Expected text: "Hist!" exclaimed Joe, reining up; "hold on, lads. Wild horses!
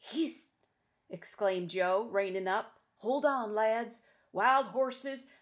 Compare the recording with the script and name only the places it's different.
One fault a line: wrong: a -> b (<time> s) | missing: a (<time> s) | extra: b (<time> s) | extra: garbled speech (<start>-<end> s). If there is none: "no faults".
no faults